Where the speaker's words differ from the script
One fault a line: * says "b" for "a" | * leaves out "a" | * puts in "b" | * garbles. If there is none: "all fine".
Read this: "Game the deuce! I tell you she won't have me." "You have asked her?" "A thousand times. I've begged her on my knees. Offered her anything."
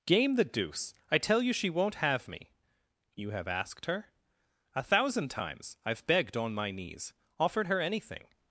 * leaves out "her"